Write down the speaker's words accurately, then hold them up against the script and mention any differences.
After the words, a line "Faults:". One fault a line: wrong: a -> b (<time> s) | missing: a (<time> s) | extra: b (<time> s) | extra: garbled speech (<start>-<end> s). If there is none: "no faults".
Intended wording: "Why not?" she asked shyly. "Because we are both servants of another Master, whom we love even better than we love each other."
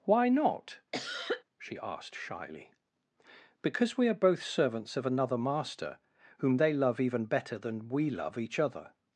"Why not?" she asked shyly. "Because we are both servants of another Master, whom they love even better than we love each other."
Faults:
wrong: we -> they (6.6 s)